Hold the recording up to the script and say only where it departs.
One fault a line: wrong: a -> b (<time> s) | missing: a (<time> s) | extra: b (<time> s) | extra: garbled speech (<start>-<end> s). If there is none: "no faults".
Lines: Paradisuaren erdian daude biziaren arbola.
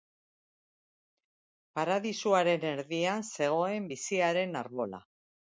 wrong: daude -> zegoen (3.4 s)